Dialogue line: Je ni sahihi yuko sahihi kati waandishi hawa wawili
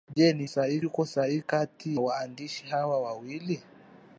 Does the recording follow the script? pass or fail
pass